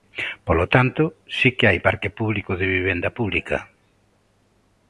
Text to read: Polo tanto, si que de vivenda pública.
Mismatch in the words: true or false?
true